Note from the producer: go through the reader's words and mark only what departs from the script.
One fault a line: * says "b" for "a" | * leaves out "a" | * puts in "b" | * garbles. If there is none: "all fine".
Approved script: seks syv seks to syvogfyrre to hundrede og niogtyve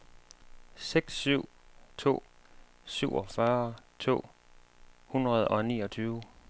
* leaves out "seks"